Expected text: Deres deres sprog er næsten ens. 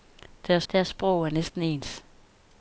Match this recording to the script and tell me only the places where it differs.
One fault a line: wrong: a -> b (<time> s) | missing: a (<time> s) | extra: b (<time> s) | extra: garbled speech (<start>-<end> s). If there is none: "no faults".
no faults